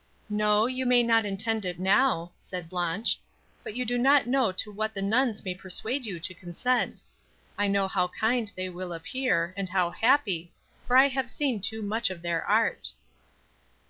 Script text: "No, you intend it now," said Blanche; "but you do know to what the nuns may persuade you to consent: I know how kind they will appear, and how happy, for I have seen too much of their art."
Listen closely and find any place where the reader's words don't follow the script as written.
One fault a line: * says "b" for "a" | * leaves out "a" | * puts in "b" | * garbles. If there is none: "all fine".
* puts in "may not"
* puts in "not"